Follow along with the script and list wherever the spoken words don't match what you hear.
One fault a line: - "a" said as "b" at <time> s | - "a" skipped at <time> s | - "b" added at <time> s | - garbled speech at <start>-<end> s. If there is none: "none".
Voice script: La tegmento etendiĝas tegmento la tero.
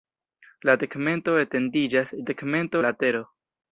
none